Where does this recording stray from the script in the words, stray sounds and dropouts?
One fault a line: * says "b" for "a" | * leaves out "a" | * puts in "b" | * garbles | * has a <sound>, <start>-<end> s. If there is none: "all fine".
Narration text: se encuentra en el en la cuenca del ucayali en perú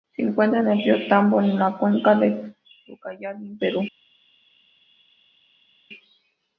* puts in "río tambo"